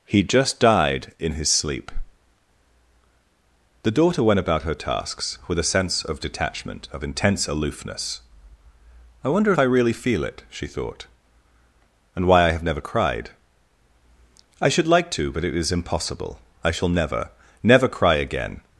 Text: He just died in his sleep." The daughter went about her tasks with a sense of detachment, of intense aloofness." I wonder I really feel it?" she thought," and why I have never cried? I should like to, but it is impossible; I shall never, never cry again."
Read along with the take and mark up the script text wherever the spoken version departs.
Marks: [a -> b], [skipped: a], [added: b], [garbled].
He just died in his sleep." The daughter went about her tasks with a sense of detachment, of intense aloofness." I wonder I really feel it?" she thought," and why I have never cried? I should like to, but it is impossible; I shall never, never cry again."